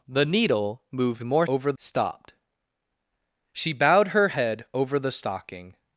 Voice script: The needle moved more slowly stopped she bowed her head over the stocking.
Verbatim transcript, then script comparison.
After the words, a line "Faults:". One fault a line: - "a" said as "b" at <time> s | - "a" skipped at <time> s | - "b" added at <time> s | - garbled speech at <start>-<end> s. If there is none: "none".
The needle moved more over stopped she bowed her head over the stocking.
Faults:
- "slowly" said as "over" at 1.4 s